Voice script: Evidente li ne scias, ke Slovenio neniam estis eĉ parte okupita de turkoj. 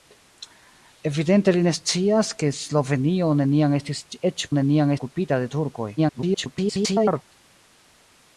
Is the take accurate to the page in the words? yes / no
no